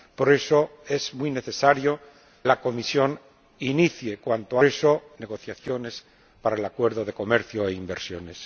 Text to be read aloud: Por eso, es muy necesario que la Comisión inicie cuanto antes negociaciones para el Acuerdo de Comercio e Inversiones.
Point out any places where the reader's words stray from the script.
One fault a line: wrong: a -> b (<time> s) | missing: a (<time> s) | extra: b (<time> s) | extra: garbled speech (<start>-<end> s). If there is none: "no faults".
missing: que (2.0 s)
wrong: antes -> eso (4.6 s)